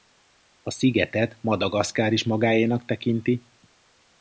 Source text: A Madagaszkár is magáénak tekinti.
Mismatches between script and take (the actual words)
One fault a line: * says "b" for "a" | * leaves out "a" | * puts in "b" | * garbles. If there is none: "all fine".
* puts in "szigetet"